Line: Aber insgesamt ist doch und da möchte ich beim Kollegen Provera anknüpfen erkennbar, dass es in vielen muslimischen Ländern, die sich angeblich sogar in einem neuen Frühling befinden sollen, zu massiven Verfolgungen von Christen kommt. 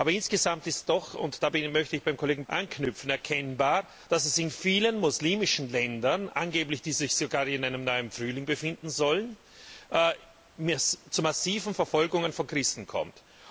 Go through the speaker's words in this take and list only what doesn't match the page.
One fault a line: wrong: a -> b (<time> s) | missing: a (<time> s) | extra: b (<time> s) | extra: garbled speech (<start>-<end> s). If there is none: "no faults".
missing: Provera (2.5 s)